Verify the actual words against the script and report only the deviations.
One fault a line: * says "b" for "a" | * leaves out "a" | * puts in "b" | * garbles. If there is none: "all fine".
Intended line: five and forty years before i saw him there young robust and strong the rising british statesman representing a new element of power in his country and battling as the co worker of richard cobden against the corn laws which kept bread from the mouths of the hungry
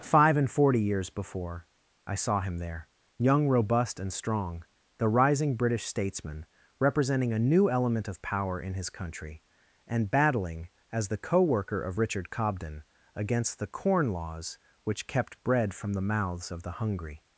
all fine